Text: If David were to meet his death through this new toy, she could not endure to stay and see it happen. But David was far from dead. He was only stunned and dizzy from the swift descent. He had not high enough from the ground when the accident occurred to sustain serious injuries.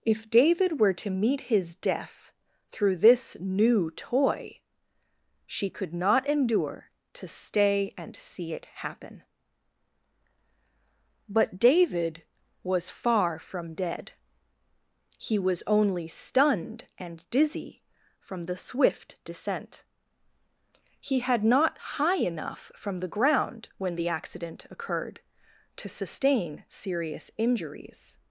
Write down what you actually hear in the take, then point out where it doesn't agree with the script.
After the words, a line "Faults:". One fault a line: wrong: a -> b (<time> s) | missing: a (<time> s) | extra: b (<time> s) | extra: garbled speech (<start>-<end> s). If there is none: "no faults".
If David were to meet his death through this new toy, she could not endure to stay and see it happen. But David was far from dead. He was only stunned and dizzy from the swift descent. He had not high enough from the ground when the accident occurred to sustain serious injuries.
Faults:
no faults